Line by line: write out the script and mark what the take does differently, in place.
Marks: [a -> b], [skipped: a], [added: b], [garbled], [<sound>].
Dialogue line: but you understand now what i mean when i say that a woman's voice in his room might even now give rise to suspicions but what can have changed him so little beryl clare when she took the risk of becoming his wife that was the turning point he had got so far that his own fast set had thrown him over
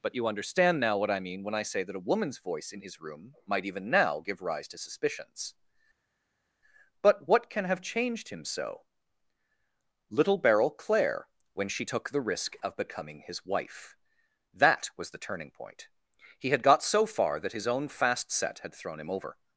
but you understand now what i mean when i say that a woman's voice in his room might even now give rise to suspicions but what can have changed him so little beryl clare when she took the risk of becoming his wife that was the turning point he had got so far that his own fast set had thrown him over